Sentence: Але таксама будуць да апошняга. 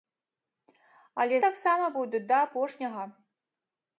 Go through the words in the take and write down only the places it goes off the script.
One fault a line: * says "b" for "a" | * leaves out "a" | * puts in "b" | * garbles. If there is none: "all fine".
all fine